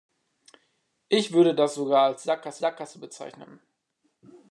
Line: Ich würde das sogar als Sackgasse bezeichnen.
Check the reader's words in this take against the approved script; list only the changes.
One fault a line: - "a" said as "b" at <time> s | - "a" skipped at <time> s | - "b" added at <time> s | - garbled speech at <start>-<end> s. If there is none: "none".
- "Sackgasse" added at 2.6 s